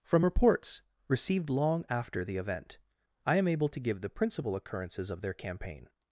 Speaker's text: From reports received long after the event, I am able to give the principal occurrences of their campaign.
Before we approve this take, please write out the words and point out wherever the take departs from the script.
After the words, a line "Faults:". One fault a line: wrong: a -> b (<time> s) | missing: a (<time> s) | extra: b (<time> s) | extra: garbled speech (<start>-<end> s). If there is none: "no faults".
From reports received long after the event, I am able to give the principal occurrences of their campaign.
Faults:
no faults